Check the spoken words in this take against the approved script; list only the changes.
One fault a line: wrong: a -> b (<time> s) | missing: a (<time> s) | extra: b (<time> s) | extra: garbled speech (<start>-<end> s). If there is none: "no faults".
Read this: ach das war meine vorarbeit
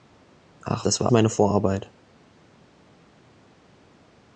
no faults